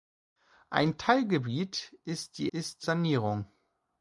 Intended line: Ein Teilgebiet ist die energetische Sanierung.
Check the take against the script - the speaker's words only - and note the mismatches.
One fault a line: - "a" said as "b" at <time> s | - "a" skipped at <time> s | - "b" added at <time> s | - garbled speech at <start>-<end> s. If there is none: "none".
- "energetische" said as "ist" at 2.5 s